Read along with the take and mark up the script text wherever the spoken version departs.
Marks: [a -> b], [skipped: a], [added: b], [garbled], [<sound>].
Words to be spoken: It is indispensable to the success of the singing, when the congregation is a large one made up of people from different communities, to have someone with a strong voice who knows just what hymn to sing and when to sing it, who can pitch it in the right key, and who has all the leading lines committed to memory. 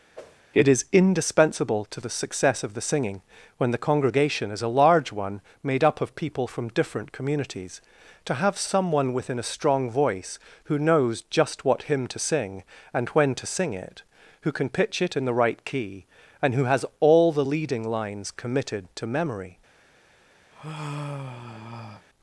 [whoosh] It is indispensable to the success of the singing, when the congregation is a large one made up of people from different communities, to have someone [with -> within] a strong voice who knows just what hymn to sing and when to sing it, who can pitch it in the right key, and who has all the leading lines committed to memory. [sigh]